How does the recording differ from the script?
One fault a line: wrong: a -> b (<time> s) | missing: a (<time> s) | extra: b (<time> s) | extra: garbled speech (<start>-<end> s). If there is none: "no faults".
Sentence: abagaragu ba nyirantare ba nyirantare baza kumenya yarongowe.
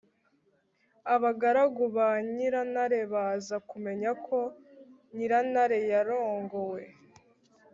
wrong: ba nyirantare baza kumenya -> baza kumenya ko nyirantare (3.1 s)